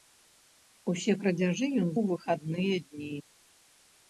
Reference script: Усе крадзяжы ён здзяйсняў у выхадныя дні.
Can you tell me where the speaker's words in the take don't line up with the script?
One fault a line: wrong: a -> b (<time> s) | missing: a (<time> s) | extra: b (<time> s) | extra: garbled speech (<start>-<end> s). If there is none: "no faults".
missing: здзяйсняў (1.9 s)